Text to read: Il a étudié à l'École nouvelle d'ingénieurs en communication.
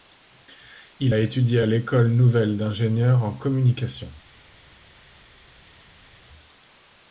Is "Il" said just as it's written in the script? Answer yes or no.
yes